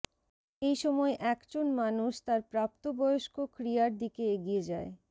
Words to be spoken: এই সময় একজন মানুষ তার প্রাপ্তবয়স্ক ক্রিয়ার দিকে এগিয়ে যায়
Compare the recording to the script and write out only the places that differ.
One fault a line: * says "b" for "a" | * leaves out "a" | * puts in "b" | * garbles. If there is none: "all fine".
all fine